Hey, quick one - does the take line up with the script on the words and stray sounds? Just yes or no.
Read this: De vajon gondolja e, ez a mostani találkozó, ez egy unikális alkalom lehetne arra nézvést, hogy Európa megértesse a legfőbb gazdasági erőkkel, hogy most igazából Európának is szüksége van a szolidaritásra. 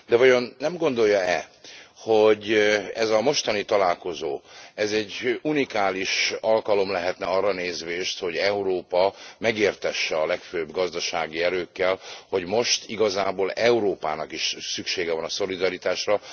no